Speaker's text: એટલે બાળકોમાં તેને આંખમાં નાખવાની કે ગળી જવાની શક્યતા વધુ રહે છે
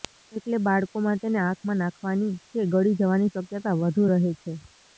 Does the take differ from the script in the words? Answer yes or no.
no